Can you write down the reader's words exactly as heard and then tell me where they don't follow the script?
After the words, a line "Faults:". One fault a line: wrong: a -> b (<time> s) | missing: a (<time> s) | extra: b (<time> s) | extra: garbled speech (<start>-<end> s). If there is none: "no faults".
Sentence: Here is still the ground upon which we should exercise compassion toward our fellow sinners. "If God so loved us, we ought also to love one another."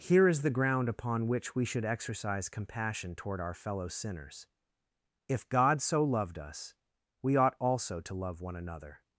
Here is the ground upon which we should exercise compassion toward our fellow sinners. "If God so loved us, we ought also to love one another."
Faults:
missing: still (0.4 s)